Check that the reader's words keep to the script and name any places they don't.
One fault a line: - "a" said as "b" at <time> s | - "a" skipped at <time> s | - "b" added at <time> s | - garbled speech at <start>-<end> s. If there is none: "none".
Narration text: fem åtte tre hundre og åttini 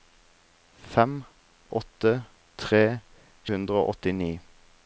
none